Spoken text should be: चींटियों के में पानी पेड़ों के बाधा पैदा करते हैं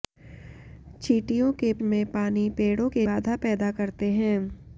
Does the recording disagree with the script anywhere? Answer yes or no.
no